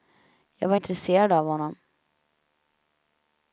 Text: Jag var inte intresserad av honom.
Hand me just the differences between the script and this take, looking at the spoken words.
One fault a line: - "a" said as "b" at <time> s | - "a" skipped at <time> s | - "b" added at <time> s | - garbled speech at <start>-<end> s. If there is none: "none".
- "inte" skipped at 0.8 s